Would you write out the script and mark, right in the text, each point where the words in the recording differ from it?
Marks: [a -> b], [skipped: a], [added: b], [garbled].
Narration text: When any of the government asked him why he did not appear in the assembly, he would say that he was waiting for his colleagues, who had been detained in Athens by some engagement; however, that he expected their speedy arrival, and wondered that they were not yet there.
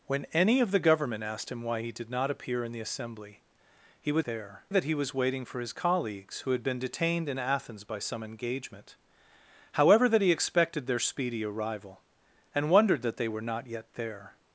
When any of the government asked him why he did not appear in the assembly, he would [say -> there] that he was waiting for his colleagues, who had been detained in Athens by some engagement; however, that he expected their speedy arrival, and wondered that they were not yet there.